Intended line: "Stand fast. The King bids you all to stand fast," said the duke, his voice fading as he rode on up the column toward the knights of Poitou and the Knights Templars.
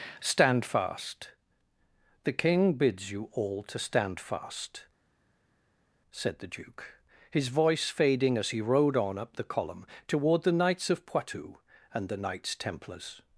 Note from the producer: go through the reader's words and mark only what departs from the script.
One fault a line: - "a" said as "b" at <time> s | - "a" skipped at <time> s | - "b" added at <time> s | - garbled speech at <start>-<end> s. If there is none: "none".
none